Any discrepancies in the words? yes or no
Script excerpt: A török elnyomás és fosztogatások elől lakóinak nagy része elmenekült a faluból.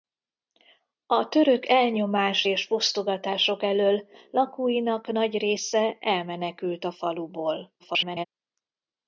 yes